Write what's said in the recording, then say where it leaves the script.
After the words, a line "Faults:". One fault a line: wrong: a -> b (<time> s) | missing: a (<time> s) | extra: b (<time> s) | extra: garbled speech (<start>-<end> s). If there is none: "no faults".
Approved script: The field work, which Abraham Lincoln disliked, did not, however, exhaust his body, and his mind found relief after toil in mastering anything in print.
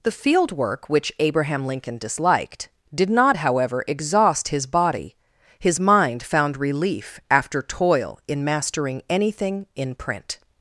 The field work, which Abraham Lincoln disliked, did not, however, exhaust his body, his mind found relief after toil in mastering anything in print.
Faults:
missing: and (5.2 s)